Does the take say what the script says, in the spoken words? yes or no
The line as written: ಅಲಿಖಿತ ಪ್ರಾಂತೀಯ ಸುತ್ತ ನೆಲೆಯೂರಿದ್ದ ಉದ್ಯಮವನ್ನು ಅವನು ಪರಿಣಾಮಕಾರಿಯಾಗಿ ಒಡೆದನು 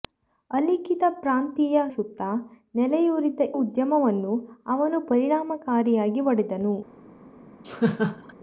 yes